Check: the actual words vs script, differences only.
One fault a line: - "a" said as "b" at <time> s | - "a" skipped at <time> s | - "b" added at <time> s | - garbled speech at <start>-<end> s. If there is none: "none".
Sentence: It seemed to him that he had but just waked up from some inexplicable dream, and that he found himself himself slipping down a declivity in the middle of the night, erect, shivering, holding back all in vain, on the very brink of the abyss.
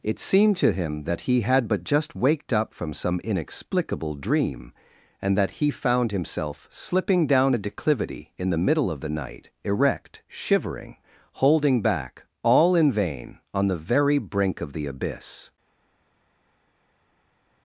- "himself" skipped at 6.7 s